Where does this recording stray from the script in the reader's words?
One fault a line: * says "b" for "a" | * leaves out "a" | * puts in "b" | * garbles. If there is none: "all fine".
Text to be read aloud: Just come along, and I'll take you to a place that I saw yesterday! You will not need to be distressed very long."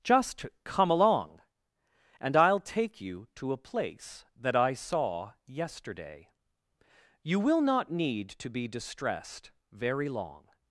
all fine